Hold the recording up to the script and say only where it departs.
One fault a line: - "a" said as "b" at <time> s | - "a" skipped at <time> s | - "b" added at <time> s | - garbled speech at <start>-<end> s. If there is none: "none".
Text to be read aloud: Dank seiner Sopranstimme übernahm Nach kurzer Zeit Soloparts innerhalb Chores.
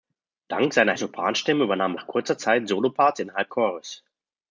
none